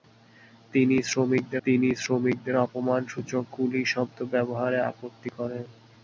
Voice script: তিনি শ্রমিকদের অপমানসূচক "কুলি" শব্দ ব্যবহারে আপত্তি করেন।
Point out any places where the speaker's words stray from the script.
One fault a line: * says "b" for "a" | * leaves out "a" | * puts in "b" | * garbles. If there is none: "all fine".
* puts in "তিনি শ্রমিকদের"